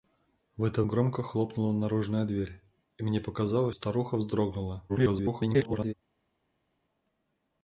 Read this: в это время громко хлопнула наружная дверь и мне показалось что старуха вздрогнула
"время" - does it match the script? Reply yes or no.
no